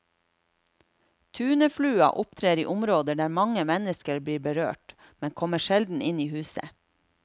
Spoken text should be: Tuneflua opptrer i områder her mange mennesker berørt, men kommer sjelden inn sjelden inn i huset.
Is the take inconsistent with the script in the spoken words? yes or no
yes